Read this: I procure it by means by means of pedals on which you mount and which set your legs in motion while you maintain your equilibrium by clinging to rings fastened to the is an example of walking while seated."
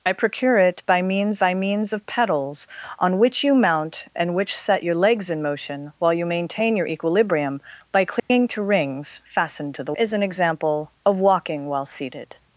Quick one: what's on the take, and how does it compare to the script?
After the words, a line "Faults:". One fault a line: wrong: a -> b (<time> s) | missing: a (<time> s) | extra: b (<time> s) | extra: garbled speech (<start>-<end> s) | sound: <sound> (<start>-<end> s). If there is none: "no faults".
I procure it by means by means of pedals on which you mount and which set your legs in motion while you maintain your equilibrium by clinging to rings fastened to the is an example of walking while seated."
Faults:
sound: dropout (8.2-8.3 s)